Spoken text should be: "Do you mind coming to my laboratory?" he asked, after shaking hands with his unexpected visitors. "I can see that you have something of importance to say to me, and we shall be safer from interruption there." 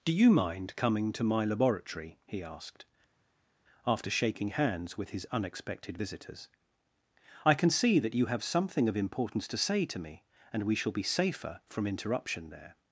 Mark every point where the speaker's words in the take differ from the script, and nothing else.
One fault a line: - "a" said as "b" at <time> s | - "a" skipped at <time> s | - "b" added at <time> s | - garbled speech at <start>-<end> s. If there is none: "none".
none